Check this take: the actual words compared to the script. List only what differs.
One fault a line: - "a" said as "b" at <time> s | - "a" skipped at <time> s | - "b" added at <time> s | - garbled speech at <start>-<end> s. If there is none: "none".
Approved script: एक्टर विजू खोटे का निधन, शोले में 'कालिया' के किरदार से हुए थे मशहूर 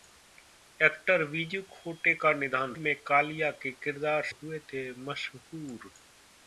- "शोले" skipped at 2.7 s
- "से" skipped at 4.2 s